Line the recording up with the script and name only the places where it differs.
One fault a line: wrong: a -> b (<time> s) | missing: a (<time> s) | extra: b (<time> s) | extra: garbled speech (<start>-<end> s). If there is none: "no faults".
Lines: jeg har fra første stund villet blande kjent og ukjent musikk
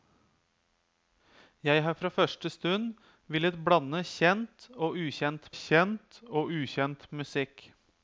extra: kjent og ukjent (5.6 s)